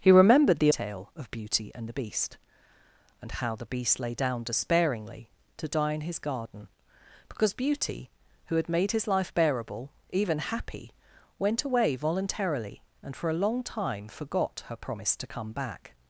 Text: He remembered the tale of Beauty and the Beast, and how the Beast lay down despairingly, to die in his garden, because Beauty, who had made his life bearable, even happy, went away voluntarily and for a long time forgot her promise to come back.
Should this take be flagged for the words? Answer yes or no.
no